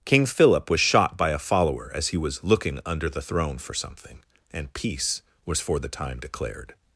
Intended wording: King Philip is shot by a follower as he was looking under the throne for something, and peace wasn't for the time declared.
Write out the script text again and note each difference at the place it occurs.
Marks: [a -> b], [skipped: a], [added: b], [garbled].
King Philip [is -> was] shot by a follower as he was looking under the throne for something, and peace [wasn't -> was] for the time declared.